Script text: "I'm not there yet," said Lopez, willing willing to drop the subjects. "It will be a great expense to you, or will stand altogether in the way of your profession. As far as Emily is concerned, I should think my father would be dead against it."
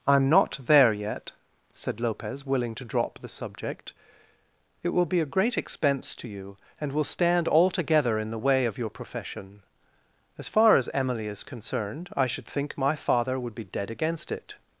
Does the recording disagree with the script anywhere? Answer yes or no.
yes